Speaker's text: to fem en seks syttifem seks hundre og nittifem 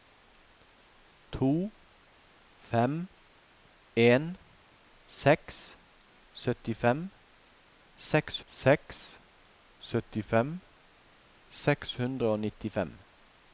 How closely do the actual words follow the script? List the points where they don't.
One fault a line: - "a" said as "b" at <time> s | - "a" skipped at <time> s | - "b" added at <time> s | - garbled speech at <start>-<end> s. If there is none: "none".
- "seks syttifem seks" added at 8.5 s